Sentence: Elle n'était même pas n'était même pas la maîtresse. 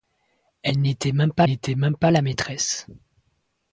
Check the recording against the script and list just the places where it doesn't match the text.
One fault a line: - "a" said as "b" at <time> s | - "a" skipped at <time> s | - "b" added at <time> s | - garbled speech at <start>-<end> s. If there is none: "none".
none